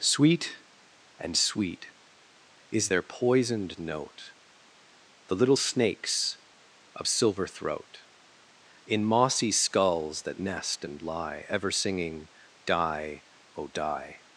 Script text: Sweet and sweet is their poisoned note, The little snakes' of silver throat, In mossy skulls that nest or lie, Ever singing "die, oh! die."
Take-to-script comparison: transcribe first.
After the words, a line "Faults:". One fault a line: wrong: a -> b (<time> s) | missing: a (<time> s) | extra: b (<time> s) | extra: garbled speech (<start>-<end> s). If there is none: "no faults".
Sweet and sweet is their poisoned note, The little snakes' of silver throat, In mossy skulls that nest and lie, Ever singing "die, oh! die."
Faults:
wrong: or -> and (10.8 s)